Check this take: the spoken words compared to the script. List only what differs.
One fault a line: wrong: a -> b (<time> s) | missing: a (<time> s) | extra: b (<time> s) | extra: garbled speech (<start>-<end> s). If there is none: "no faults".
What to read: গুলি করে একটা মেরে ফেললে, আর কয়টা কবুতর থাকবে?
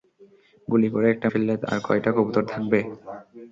missing: মেরে (1.3 s)